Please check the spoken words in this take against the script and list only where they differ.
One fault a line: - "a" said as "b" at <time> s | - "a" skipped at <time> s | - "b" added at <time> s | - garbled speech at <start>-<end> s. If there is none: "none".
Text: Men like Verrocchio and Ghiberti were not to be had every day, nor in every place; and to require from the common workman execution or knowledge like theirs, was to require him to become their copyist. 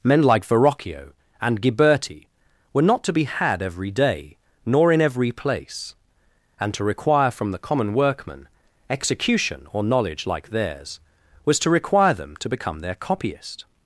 - "him" said as "them" at 12.1 s